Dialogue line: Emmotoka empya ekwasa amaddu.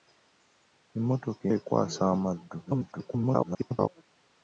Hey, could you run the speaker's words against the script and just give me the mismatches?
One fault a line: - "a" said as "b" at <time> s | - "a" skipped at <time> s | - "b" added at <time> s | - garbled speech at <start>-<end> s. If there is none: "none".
- "empya" skipped at 1.4 s
- garbled speech at 2.7-3.9 s